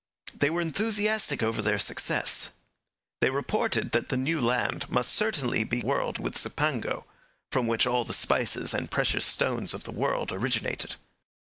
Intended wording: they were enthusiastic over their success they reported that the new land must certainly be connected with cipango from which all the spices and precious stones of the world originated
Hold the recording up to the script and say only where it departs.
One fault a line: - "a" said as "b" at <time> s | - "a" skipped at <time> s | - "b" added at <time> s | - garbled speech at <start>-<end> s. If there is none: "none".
- "connected" said as "world" at 5.8 s